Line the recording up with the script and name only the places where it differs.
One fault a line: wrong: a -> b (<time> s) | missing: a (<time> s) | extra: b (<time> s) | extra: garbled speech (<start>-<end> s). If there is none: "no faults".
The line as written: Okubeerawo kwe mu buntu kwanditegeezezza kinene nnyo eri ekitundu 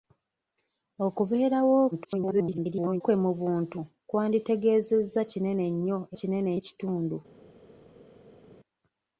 extra: garbled speech (1.9-3.0 s)
wrong: eri -> kinene (6.2 s)